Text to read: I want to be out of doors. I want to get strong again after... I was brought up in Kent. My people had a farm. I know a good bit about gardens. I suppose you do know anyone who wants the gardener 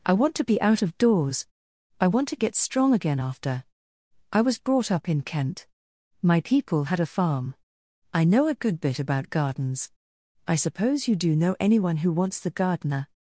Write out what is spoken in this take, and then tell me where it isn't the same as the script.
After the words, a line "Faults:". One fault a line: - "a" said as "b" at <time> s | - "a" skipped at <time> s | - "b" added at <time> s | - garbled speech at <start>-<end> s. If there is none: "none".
I want to be out of doors. I want to get strong again after... I was brought up in Kent. My people had a farm. I know a good bit about gardens. I suppose you do know anyone who wants the gardener
Faults:
none